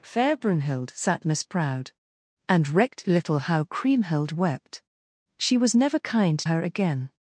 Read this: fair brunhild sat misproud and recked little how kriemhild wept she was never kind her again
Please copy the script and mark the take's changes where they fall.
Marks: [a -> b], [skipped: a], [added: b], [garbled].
fair brunhild sat misproud and recked little how kriemhild wept she was never kind her again